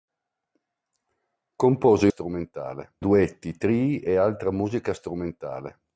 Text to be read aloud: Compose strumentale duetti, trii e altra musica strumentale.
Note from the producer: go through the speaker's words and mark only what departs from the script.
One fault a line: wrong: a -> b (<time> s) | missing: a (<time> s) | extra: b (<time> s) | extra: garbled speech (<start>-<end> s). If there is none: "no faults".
no faults